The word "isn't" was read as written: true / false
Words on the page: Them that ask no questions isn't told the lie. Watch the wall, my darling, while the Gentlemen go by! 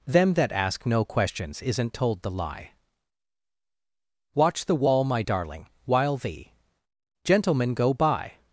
true